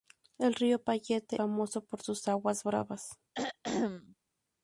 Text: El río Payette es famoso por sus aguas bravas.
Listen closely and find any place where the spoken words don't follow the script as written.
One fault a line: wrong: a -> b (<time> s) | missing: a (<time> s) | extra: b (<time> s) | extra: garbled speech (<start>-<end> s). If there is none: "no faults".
missing: es (1.3 s)